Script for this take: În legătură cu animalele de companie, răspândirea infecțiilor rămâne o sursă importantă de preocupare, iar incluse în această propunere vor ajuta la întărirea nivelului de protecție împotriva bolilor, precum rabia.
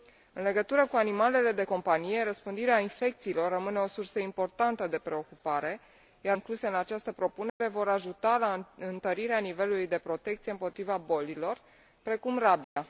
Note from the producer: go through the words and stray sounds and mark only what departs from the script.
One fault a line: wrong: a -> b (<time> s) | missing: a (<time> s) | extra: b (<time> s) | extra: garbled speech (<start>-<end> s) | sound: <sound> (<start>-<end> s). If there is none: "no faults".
sound: dropout (7.5-7.6 s)
sound: dropout (12.6-12.8 s)